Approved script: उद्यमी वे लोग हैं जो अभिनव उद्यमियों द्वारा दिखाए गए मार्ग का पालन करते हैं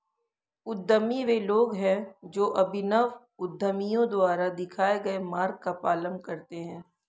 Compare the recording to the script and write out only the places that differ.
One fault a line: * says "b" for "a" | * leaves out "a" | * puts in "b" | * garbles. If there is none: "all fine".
all fine